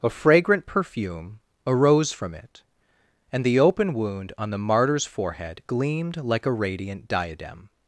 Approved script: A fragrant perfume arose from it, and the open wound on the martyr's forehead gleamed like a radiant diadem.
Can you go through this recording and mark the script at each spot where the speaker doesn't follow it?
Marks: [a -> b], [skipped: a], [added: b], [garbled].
A fragrant perfume arose from it, and the open wound on the martyr's forehead gleamed like a radiant diadem.